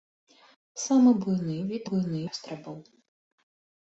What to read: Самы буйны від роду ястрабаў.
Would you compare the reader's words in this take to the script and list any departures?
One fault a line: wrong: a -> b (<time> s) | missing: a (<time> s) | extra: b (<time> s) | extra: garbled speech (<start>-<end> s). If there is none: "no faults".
wrong: роду -> буйны (1.9 s)